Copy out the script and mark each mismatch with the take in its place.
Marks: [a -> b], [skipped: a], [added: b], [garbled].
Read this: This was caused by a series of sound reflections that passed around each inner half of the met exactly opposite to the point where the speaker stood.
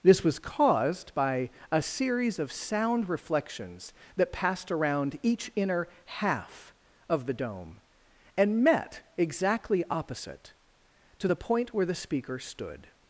This was caused by a series of sound reflections that passed around each inner half of the [added: dome and] met exactly opposite to the point where the speaker stood.